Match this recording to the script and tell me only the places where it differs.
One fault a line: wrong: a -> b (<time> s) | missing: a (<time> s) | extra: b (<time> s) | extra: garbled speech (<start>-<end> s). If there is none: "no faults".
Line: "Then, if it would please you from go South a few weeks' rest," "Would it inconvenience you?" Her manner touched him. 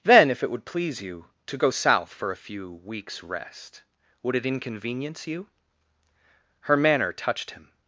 wrong: from -> to (1.4 s)
extra: for (2.1 s)